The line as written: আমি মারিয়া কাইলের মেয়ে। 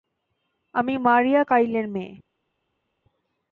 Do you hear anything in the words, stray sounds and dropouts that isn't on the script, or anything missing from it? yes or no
no